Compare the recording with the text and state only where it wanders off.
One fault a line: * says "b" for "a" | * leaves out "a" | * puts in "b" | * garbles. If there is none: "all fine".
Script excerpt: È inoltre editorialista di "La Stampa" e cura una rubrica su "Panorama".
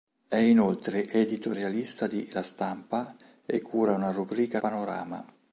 * leaves out "su"